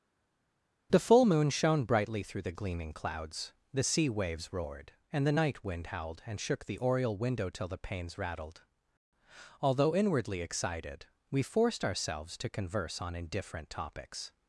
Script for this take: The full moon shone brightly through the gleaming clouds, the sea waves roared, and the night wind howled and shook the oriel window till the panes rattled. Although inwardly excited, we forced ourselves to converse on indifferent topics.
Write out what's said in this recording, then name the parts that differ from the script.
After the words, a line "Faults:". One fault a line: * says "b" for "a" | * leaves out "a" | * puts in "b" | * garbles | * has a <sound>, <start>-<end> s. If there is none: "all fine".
The full moon shone brightly through the gleaming clouds, the sea waves roared, and the night wind howled and shook the oriel window till the panes rattled. Although inwardly excited, we forced ourselves to converse on indifferent topics.
Faults:
all fine